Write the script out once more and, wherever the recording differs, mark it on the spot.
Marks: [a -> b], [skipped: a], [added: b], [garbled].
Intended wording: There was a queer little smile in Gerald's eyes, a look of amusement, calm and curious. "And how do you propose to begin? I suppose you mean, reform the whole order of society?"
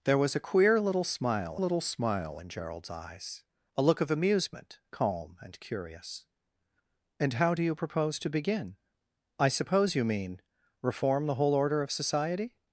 There was a queer little smile [added: little smile] in Gerald's eyes, a look of amusement, calm and curious. "And how do you propose to begin? I suppose you mean, reform the whole order of society?"